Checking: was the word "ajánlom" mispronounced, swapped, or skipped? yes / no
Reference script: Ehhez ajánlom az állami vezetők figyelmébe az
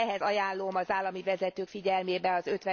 no